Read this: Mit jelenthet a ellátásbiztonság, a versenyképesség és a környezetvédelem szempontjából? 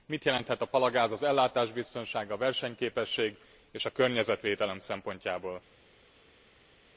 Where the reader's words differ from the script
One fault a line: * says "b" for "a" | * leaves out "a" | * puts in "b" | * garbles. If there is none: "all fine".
* puts in "palagáz az"